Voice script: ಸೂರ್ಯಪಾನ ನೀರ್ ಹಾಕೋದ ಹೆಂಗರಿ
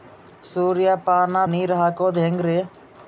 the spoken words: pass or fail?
pass